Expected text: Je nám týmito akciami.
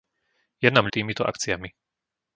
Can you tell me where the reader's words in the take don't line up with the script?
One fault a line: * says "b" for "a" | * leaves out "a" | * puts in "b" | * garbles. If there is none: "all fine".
all fine